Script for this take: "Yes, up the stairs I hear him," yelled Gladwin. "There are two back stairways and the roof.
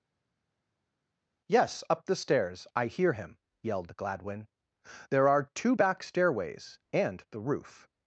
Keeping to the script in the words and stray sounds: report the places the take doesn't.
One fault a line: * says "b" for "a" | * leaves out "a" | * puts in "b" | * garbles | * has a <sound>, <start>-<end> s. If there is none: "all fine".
all fine